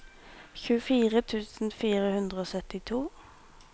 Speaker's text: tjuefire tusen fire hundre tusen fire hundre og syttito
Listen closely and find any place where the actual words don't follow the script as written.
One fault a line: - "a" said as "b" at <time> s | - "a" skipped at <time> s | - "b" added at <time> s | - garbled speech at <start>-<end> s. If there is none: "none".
- "tusen fire hundre" skipped at 2.4 s